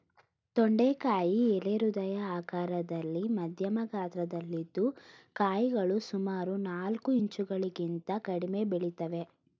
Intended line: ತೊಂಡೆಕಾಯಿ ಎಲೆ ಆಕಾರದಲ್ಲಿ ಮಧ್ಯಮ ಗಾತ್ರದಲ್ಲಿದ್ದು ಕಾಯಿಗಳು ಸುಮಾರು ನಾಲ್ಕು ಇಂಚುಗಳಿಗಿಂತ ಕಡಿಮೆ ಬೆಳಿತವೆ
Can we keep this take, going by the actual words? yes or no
no